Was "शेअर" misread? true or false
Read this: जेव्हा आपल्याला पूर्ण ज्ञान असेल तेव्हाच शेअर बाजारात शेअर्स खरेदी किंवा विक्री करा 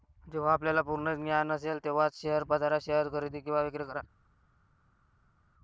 false